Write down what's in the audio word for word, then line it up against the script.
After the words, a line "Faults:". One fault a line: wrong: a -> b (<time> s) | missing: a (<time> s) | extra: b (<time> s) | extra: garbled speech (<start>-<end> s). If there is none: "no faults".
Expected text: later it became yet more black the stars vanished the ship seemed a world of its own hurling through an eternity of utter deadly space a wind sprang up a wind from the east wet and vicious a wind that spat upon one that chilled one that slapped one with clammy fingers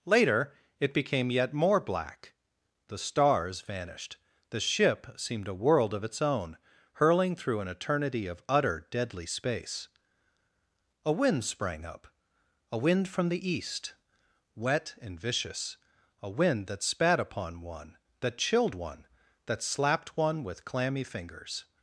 later it became yet more black the stars vanished the ship seemed a world of its own hurling through an eternity of utter deadly space a wind sprang up a wind from the east wet and vicious a wind that spat upon one that chilled one that slapped one with clammy fingers
Faults:
no faults